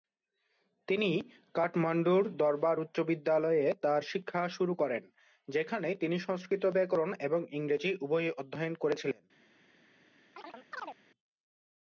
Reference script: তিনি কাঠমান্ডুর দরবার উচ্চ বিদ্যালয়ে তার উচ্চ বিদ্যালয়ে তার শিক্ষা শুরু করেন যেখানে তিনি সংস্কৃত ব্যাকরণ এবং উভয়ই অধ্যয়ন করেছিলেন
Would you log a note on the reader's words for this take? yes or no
yes